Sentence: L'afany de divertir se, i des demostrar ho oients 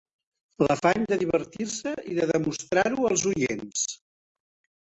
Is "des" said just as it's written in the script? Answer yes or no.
no